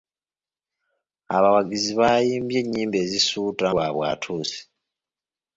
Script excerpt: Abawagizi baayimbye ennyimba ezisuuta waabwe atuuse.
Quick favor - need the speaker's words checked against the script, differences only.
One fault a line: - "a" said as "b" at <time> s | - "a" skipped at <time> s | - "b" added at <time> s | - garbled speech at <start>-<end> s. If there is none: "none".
none